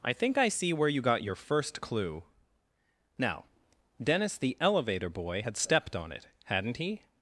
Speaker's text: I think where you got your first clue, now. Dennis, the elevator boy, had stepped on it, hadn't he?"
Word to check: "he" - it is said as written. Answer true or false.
true